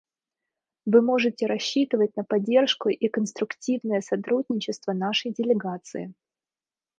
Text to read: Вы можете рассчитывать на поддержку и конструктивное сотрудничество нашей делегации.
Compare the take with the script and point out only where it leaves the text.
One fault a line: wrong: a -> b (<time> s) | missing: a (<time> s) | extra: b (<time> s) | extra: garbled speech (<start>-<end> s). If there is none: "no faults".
no faults